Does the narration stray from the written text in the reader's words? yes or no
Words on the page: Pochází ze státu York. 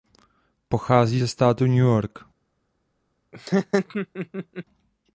yes